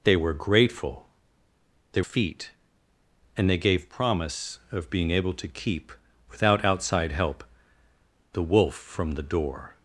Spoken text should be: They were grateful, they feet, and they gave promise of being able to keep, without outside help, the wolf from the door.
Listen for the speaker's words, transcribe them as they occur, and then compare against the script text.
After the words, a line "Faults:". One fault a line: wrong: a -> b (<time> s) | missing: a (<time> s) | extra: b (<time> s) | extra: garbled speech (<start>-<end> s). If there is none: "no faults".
They were grateful, they feet, and they gave promise of being able to keep, without outside help, the wolf from the door.
Faults:
no faults